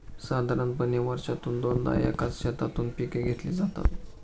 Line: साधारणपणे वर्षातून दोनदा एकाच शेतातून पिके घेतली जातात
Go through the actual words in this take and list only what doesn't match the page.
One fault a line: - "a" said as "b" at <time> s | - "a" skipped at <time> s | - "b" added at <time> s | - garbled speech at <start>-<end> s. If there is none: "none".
none